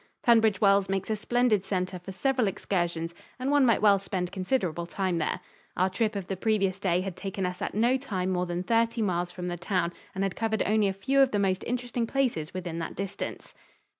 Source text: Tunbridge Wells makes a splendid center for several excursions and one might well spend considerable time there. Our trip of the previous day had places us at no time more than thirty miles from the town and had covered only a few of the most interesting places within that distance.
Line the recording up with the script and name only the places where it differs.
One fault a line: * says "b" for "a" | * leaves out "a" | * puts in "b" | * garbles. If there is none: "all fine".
* says "taken" for "places"